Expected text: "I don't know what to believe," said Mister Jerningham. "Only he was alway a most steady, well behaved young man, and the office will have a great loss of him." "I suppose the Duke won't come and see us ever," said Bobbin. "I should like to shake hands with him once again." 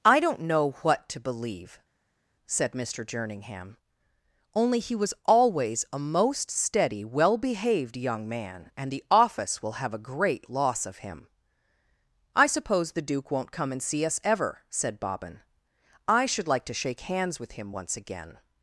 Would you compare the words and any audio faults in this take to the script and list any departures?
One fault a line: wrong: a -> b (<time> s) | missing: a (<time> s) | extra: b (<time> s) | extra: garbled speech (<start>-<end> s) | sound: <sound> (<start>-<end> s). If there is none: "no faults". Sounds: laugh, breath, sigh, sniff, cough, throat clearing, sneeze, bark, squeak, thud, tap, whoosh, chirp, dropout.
wrong: alway -> always (5.2 s)